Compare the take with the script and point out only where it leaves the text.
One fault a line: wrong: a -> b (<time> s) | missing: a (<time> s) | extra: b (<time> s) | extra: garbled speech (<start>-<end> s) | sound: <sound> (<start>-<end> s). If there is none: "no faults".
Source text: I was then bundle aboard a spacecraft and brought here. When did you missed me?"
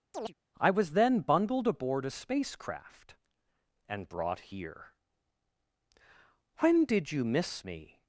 sound: chirp (0.1-0.3 s)
wrong: bundle -> bundled (1.2 s)
wrong: missed -> miss (7.2 s)